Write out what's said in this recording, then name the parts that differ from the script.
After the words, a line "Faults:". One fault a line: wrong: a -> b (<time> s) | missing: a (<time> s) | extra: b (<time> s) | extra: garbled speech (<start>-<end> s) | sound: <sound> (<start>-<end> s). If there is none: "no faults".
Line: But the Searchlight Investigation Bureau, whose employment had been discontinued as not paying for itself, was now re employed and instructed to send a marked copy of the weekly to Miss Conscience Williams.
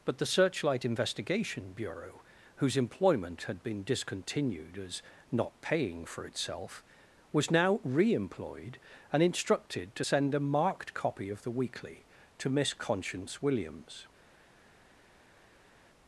But the Searchlight Investigation Bureau, whose employment had been discontinued as not paying for itself, was now re employed and instructed to send a marked copy of the weekly to Miss Conscience Williams.
Faults:
no faults